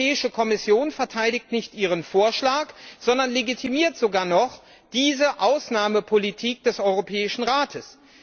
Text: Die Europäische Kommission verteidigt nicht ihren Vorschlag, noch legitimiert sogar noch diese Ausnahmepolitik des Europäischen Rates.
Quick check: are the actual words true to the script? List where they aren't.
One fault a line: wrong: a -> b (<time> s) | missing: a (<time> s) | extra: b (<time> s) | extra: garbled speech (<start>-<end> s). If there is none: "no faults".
wrong: noch -> sondern (3.0 s)